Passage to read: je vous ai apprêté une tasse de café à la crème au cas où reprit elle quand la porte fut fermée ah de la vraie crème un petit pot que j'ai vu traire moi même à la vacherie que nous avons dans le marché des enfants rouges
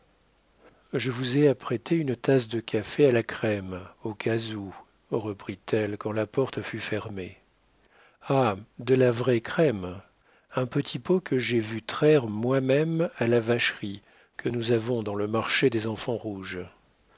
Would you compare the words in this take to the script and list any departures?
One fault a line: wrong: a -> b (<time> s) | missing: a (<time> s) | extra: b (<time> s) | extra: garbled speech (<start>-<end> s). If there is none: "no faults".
no faults